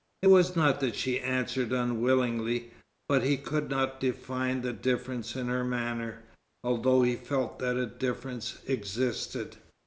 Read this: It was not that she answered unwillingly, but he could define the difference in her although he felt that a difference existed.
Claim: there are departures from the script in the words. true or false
true